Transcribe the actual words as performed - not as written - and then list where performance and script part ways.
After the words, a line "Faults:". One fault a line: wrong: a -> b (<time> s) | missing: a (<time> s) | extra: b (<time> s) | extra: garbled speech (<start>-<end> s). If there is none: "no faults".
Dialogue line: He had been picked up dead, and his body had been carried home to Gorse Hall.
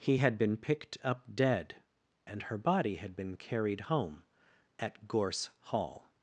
He had been picked up dead, and her body had been carried home at Gorse Hall.
Faults:
wrong: his -> her (2.4 s)
wrong: to -> at (4.8 s)